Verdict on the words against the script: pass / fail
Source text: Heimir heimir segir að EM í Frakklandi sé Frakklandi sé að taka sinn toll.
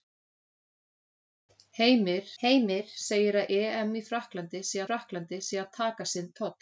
pass